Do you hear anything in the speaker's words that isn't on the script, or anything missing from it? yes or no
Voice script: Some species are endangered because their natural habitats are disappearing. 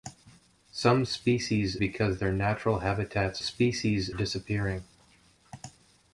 yes